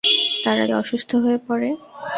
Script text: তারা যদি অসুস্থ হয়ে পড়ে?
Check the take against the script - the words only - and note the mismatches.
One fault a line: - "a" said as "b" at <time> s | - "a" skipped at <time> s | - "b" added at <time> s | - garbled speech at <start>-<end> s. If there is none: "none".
- "যদি" skipped at 0.7 s